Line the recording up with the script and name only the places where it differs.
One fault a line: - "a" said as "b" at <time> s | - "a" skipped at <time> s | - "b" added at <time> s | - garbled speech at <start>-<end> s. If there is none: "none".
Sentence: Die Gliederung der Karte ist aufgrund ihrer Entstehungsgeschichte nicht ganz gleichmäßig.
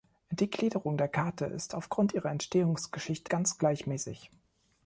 - "nicht" skipped at 3.3 s